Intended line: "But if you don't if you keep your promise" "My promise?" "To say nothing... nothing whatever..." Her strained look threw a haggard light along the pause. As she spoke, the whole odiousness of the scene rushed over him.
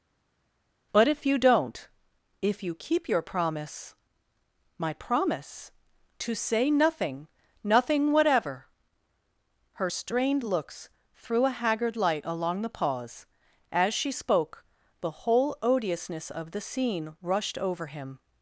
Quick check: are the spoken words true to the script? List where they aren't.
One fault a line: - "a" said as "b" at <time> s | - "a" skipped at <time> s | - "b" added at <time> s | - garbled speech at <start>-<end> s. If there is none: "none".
- "look" said as "looks" at 10.4 s